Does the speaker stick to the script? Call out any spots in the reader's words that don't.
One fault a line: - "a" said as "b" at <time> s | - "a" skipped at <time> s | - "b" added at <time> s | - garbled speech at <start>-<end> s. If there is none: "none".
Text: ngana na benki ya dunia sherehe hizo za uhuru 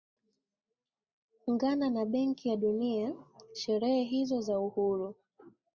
none